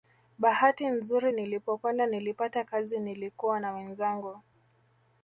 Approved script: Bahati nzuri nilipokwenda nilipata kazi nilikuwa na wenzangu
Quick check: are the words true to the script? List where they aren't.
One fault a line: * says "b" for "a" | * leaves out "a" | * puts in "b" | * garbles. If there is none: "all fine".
all fine